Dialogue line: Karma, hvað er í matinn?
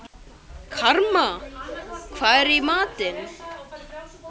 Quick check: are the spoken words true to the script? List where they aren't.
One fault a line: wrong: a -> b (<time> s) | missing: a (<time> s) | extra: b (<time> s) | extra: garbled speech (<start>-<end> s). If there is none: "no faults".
no faults